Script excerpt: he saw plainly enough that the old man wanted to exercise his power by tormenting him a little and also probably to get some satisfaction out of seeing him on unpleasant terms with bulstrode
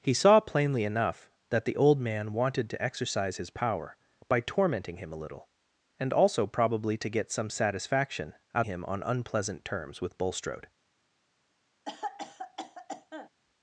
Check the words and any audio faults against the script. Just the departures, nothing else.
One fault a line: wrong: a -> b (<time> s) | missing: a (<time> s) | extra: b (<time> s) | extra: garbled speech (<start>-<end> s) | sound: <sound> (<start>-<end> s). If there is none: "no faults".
missing: of seeing (8.7 s)
sound: cough (11.8-13.3 s)